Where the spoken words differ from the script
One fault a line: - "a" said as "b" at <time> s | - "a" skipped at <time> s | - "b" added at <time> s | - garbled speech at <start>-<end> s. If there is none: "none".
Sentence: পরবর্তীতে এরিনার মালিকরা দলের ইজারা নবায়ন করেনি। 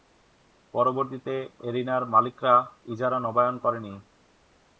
- "দলের" skipped at 2.5 s